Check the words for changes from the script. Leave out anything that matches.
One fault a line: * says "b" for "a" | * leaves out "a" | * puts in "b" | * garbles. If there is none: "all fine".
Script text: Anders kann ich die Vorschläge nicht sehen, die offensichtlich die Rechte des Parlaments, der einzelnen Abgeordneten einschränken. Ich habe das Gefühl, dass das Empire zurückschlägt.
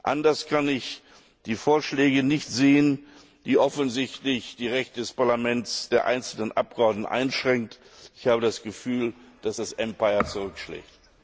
all fine